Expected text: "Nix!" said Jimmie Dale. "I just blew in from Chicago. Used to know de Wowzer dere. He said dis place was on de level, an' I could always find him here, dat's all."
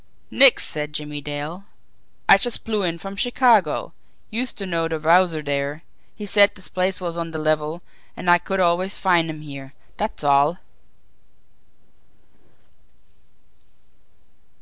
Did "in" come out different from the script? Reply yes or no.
no